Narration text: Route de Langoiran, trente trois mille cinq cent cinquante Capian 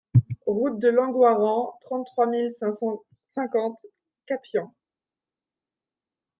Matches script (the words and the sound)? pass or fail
pass